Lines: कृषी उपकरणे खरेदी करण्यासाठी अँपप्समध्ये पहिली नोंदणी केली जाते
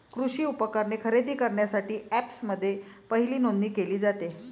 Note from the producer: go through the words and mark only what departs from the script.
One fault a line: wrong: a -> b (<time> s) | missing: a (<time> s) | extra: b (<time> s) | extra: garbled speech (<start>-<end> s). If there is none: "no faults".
no faults